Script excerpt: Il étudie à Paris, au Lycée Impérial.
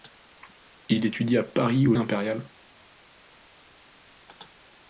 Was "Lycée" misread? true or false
true